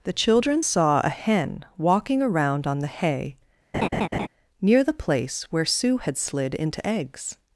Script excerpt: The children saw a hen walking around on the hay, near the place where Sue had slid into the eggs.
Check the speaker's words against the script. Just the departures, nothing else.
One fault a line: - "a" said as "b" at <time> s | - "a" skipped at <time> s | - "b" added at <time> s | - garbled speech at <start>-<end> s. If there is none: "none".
- "the" skipped at 6.9 s